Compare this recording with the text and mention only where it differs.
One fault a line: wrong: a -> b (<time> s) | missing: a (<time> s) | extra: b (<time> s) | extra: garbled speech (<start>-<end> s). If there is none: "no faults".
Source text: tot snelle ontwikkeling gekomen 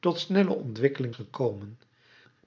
no faults